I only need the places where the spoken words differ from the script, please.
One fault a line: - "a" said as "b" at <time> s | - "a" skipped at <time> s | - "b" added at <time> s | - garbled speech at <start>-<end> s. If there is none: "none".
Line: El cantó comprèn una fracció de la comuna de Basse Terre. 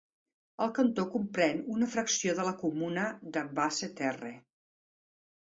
none